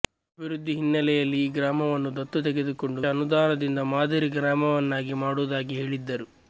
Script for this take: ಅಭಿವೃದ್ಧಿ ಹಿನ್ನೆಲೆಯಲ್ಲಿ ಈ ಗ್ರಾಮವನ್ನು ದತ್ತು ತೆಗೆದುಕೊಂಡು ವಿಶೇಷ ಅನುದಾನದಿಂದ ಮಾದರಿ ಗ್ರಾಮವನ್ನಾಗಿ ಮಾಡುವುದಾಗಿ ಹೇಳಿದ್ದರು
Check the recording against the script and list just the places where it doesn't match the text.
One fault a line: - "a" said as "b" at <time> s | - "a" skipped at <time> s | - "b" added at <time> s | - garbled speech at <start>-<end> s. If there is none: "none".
- "ವಿಶೇಷ" skipped at 3.0 s